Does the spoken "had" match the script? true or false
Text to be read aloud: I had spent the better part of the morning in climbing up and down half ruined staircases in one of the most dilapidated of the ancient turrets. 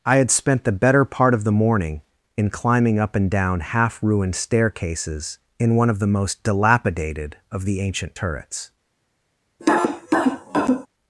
true